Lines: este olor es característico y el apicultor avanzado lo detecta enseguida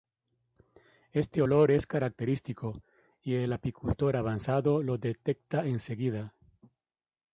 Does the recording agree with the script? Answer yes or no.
yes